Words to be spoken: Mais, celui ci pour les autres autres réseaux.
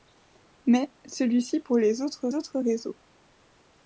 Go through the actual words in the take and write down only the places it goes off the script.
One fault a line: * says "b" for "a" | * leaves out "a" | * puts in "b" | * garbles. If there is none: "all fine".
all fine